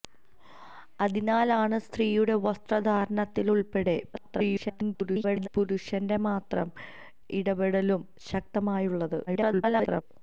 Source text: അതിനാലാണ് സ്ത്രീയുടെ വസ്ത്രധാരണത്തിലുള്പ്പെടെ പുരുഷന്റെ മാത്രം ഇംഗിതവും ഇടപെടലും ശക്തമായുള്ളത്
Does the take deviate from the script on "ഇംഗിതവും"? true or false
true